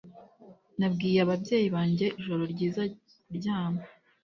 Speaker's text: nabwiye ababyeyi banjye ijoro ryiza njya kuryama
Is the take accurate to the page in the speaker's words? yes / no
no